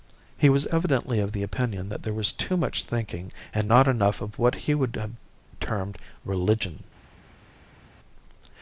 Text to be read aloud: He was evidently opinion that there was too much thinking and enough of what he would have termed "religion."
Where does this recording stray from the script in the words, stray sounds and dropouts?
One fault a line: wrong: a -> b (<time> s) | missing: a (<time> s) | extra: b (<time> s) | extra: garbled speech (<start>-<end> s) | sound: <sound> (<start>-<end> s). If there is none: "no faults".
extra: of the (1.2 s)
extra: not (3.7 s)